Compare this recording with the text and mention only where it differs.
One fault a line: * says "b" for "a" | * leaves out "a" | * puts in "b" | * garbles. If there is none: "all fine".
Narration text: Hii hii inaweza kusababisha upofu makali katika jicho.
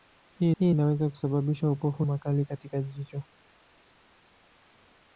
all fine